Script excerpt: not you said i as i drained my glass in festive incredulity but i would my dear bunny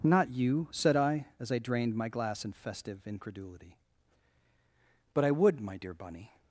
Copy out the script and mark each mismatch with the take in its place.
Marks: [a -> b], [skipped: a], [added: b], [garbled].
not you said i as i drained my glass in festive incredulity but i would my dear bunny